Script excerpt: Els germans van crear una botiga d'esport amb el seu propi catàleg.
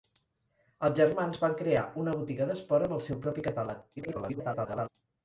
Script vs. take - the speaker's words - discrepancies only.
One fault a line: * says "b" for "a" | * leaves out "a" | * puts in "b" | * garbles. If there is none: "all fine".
* garbles